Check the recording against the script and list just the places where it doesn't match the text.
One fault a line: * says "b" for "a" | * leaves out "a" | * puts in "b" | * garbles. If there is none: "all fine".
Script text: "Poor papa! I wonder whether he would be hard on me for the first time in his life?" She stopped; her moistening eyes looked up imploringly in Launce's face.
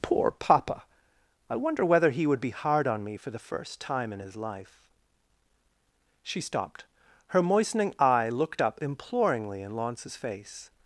* says "eye" for "eyes"